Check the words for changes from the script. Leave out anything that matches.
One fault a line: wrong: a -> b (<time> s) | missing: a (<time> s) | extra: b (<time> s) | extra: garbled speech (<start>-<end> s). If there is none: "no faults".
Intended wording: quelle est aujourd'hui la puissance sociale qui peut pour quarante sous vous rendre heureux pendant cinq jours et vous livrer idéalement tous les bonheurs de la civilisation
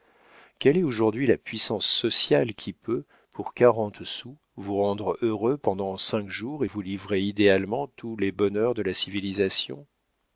no faults